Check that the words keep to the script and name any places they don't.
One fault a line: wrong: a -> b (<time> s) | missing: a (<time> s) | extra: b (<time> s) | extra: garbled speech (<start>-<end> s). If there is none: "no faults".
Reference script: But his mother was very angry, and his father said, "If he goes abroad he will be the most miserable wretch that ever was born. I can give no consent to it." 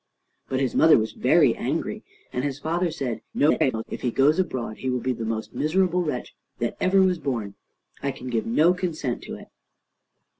extra: garbled speech (3.3-3.8 s)